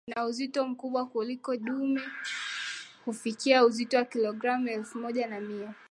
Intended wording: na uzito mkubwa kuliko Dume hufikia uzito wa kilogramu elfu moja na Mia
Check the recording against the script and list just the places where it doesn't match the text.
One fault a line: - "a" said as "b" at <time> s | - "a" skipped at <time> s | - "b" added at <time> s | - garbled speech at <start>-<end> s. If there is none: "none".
none